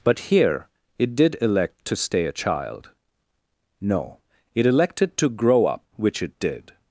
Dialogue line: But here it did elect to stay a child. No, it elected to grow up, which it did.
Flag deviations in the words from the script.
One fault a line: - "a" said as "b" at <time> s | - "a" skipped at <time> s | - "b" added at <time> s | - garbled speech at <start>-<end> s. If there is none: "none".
none